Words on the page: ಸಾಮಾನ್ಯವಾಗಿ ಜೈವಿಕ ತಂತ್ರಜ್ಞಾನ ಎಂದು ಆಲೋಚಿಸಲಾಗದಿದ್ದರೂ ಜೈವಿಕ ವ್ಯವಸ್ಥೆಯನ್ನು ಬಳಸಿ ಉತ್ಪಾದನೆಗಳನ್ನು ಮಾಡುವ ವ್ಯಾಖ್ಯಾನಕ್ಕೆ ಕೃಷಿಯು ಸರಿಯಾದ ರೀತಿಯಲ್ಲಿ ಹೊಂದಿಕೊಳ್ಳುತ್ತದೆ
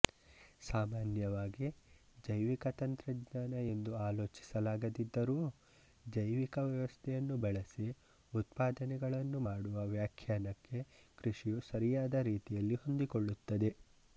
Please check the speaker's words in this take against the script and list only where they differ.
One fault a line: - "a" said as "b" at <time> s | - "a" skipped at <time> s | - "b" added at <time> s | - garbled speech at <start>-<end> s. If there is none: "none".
none